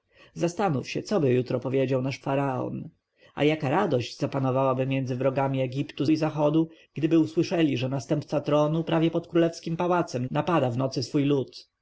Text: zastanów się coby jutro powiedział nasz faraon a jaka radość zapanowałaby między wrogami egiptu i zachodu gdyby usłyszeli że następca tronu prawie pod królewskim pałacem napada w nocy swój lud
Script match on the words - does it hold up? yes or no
yes